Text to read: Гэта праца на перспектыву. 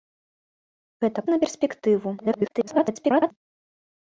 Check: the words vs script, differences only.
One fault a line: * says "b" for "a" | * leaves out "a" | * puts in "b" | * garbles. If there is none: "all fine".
* leaves out "праца"
* garbles